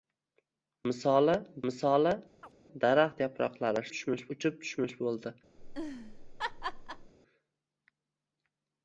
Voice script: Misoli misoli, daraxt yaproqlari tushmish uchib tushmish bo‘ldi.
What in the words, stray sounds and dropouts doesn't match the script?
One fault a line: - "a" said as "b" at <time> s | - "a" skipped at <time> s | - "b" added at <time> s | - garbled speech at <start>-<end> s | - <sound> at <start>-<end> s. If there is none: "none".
- chirp at 2.4-2.5 s
- laugh at 5.6-7.1 s